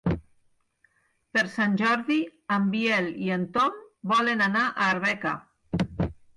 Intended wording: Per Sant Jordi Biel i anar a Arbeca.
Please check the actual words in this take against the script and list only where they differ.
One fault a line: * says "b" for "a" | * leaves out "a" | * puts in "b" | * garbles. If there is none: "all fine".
* puts in "en"
* puts in "en Tom volen"